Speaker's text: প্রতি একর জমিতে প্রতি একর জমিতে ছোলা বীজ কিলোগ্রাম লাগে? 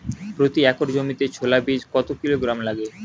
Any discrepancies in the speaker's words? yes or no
yes